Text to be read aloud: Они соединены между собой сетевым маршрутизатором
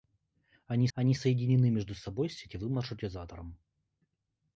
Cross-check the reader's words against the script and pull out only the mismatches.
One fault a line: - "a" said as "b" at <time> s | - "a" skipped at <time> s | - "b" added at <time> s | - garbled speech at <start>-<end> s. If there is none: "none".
- "они" added at 0.9 s